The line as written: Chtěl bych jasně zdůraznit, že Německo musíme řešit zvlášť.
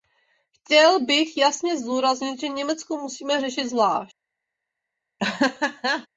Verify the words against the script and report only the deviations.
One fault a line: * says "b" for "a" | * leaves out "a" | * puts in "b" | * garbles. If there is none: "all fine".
all fine